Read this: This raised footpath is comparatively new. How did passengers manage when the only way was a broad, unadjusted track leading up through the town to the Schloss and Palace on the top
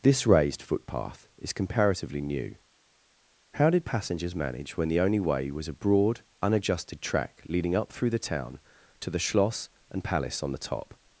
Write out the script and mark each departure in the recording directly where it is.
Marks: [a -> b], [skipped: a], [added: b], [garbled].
This raised footpath is comparatively new. How did passengers manage when the only way was a broad, unadjusted track leading up through the town to the Schloss and Palace on the top